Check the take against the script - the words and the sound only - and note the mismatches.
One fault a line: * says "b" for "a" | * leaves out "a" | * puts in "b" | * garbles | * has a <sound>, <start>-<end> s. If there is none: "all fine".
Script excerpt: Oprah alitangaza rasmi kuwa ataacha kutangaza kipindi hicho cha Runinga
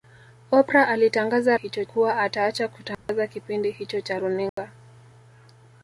* says "hicho" for "rasmi"
* has a dropout, 2.9-3.1 s
* has a dropout, 4.5-4.6 s